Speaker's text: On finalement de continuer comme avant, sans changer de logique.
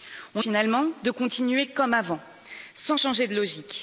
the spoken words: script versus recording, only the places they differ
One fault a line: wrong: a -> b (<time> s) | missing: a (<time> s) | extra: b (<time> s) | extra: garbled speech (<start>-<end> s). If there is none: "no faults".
no faults